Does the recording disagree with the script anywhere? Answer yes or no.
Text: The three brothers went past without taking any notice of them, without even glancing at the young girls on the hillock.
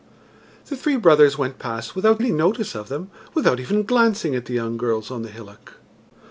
yes